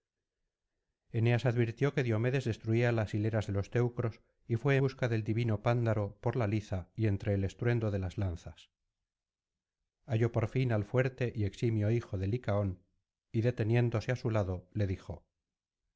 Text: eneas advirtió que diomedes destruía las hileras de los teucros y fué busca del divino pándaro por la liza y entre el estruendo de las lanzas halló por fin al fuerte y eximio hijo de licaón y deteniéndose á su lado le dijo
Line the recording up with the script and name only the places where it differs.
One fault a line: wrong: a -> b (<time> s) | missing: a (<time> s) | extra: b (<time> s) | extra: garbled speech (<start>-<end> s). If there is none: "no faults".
no faults